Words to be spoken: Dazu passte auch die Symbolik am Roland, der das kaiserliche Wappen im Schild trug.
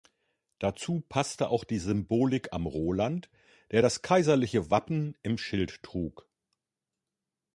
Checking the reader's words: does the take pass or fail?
pass